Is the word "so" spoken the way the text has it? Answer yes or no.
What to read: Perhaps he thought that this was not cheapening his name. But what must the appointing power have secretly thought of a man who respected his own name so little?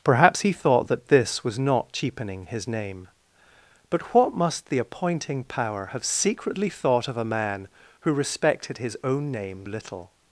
no